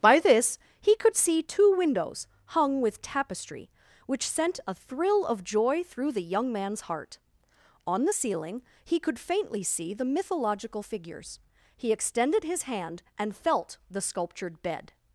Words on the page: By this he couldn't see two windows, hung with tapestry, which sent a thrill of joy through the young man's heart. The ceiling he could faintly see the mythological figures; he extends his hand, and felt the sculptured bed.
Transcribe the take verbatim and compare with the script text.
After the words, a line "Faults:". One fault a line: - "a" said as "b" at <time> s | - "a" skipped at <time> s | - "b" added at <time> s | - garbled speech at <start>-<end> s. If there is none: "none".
By this he could see two windows, hung with tapestry, which sent a thrill of joy through the young man's heart. On the ceiling he could faintly see the mythological figures; he extended his hand, and felt the sculptured bed.
Faults:
- "couldn't" said as "could" at 0.9 s
- "On" added at 7.9 s
- "extends" said as "extended" at 11.9 s